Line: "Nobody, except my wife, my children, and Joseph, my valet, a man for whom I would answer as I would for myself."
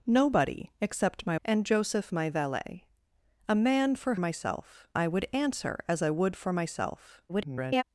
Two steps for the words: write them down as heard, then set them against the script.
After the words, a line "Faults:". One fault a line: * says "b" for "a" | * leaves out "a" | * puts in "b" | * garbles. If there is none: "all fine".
"Nobody, except my and Joseph, my valet, a man for myself I would answer as I would for myself." [garbled]
Faults:
* leaves out "wife my children"
* says "myself" for "whom"
* garbles